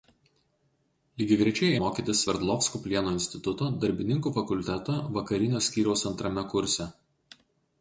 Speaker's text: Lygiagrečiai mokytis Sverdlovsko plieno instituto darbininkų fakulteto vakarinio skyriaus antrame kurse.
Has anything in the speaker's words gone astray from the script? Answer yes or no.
no